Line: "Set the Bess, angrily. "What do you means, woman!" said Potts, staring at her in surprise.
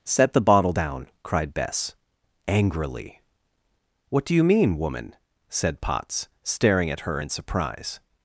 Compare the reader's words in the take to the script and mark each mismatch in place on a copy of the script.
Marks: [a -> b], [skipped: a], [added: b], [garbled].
"Set the [added: bottle down cried] Bess, angrily. "What do you [means, -> mean] woman!" said Potts, staring at her in surprise.